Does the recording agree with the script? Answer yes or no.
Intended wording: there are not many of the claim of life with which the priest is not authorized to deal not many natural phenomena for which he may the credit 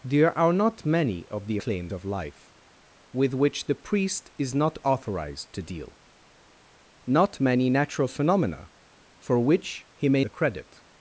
yes